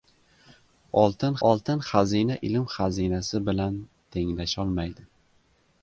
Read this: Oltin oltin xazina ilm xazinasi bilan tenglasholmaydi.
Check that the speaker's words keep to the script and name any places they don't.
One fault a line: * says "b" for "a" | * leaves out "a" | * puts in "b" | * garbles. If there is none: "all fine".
all fine